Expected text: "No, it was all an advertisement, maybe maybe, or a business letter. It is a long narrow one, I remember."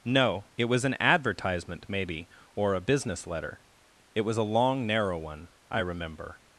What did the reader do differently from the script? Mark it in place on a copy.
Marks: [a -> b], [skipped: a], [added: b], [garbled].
"No, it was [skipped: all] an advertisement, maybe [skipped: maybe,] or a business letter. It [is -> was] a long narrow one, I remember."